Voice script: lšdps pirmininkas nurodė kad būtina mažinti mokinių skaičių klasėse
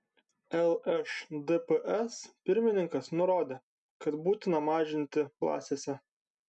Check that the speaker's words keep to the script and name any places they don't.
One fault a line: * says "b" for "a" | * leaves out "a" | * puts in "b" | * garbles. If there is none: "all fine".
* leaves out "mokinių skaičių"